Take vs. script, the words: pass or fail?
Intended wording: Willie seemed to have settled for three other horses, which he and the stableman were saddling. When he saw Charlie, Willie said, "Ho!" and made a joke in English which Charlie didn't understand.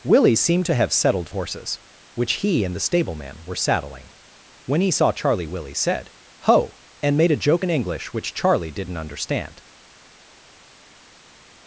fail